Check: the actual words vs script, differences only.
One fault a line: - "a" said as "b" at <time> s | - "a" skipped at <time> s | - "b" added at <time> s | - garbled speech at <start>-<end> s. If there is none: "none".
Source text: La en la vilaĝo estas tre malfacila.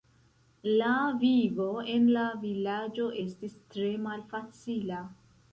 - "vivo" added at 1.2 s
- "estas" said as "estis" at 3.2 s